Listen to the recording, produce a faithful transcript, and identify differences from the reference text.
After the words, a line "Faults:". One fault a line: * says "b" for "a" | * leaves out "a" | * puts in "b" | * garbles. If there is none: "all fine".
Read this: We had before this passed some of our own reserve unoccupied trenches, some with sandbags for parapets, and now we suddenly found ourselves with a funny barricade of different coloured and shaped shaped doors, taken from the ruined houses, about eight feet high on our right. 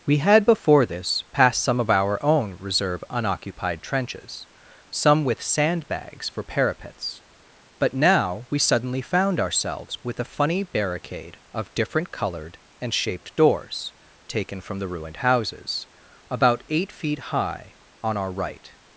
We had before this passed some of our own reserve unoccupied trenches, some with sandbags for parapets, but now we suddenly found ourselves with a funny barricade of different coloured and shaped doors, taken from the ruined houses, about eight feet high on our right.
Faults:
* says "but" for "and"
* leaves out "shaped"